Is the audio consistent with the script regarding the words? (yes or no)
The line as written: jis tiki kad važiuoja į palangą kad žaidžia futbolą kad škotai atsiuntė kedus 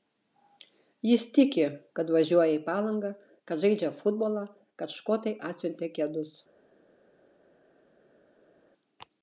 yes